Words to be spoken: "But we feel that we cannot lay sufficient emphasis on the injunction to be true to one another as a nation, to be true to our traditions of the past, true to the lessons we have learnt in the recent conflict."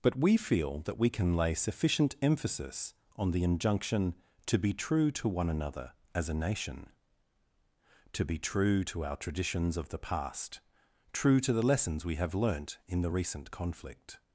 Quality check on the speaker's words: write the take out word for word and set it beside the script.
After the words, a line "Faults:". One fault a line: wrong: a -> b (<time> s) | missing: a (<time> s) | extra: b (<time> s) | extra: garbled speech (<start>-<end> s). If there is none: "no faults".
"But we feel that we can lay sufficient emphasis on the injunction to be true to one another as a nation, to be true to our traditions of the past, true to the lessons we have learnt in the recent conflict."
Faults:
wrong: cannot -> can (1.1 s)